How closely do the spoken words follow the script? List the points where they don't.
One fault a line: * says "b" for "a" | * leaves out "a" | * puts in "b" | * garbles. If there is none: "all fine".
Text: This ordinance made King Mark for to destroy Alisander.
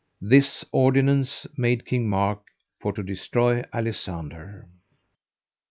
all fine